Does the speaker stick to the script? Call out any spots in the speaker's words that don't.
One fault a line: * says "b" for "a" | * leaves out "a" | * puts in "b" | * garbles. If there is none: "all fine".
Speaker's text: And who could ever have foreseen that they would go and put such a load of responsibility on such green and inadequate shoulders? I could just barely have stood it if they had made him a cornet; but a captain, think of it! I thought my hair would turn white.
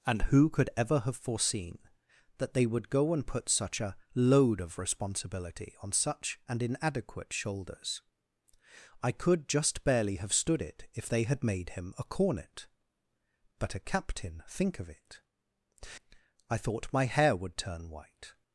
* leaves out "green"